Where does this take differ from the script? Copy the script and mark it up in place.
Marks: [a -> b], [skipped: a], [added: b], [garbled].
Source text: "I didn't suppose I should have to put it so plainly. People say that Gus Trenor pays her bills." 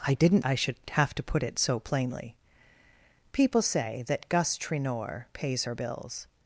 "I didn't [skipped: suppose] I should have to put it so plainly. People say that Gus Trenor pays her bills."